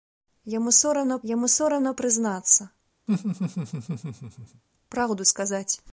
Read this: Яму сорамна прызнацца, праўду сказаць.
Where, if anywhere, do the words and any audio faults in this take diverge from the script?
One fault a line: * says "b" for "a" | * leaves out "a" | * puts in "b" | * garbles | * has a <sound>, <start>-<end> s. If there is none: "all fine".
* puts in "яму сорамна"
* has a laugh, 3.1-4.6 s